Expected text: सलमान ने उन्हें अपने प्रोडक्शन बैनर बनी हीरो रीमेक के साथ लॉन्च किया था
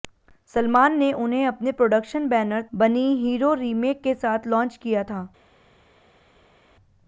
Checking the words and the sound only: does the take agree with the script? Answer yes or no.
yes